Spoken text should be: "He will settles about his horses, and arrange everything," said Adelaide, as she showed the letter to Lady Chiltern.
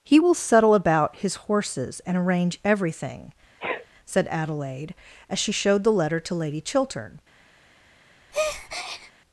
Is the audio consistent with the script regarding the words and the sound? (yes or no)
no